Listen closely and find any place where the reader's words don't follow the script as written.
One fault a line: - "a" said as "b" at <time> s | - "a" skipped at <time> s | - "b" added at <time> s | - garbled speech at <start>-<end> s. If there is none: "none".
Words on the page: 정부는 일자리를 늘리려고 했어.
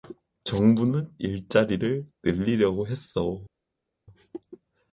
none